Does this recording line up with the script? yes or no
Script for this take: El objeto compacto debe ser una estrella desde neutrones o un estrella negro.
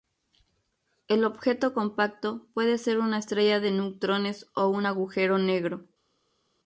no